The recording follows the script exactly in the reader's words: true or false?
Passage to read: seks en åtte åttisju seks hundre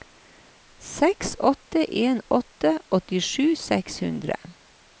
false